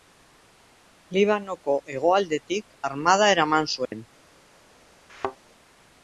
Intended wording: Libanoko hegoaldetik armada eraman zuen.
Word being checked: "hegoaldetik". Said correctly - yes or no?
yes